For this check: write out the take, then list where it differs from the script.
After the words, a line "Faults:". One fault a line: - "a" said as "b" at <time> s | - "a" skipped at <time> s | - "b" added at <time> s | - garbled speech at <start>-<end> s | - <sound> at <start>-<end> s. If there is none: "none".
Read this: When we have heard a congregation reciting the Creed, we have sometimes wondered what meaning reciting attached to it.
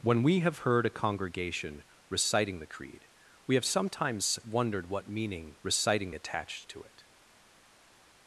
When we have heard a congregation reciting the Creed, we have sometimes wondered what meaning reciting attached to it.
Faults:
none